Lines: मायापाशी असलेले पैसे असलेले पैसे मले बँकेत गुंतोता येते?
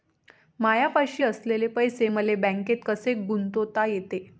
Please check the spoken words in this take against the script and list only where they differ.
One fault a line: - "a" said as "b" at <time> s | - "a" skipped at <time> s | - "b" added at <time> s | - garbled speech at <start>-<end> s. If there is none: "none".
- "असलेले पैसे" skipped at 2.1 s
- "कसे" added at 2.8 s